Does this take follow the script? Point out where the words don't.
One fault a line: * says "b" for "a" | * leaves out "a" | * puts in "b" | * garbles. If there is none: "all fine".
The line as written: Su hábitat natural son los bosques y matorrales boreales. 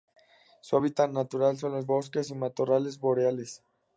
all fine